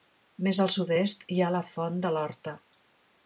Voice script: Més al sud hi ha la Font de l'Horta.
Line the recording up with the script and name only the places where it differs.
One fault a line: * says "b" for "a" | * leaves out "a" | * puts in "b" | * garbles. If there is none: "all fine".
* puts in "est"